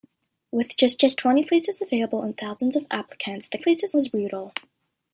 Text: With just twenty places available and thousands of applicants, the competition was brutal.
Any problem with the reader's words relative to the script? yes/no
yes